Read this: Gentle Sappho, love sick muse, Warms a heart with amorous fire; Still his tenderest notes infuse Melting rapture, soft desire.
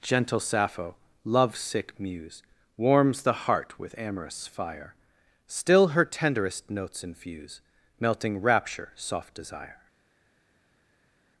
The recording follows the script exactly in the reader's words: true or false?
false